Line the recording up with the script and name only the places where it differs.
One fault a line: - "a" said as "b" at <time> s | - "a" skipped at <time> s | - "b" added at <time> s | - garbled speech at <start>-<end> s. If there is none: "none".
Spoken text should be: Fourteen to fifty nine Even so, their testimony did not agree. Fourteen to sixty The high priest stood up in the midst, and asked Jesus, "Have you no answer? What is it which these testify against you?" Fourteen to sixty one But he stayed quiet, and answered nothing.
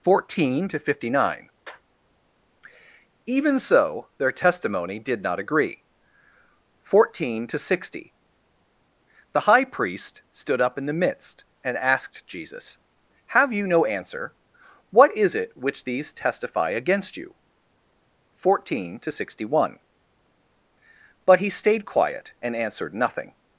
none